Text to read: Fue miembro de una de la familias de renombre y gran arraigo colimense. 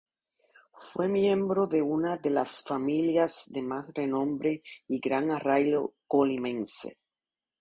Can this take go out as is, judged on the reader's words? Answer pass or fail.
fail